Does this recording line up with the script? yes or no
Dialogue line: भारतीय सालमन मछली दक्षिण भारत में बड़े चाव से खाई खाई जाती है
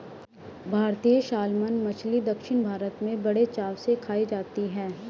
no